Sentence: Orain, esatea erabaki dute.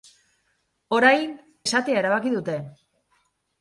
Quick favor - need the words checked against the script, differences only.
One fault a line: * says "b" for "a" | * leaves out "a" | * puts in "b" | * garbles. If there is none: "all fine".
all fine